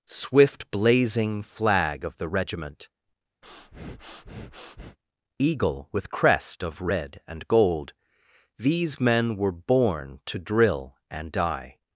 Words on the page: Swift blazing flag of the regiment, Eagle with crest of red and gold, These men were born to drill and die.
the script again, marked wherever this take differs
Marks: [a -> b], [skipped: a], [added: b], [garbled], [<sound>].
Swift blazing flag of the regiment, [breath] Eagle with crest of red and gold, These men were born to drill and die.